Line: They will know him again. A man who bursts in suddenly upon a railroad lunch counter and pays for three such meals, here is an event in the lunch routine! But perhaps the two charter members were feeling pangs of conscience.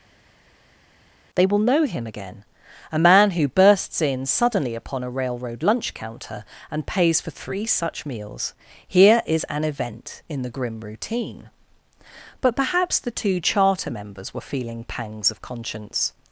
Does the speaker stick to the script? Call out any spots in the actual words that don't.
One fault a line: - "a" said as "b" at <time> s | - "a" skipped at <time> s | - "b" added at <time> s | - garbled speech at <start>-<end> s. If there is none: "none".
- "lunch" said as "grim" at 10.5 s